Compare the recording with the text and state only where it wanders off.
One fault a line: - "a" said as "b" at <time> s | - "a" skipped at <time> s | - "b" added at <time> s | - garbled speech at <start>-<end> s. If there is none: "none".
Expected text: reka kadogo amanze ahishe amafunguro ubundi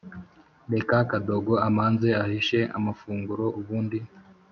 none